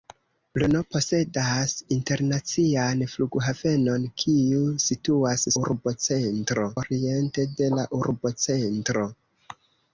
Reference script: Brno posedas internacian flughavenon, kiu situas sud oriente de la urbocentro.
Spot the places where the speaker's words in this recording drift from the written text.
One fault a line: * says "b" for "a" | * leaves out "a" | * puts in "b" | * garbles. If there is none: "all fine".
* says "urbocentro" for "sud"